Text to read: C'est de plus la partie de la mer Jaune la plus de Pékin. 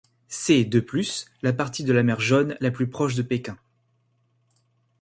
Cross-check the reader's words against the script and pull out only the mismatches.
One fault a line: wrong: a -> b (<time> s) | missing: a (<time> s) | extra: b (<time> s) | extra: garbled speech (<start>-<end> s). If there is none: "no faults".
extra: proche (2.9 s)